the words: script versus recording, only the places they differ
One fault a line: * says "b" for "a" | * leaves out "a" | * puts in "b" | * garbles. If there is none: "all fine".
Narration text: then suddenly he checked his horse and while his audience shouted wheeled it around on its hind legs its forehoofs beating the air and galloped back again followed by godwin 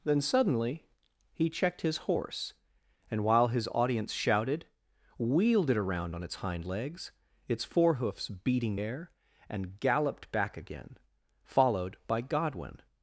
* leaves out "the"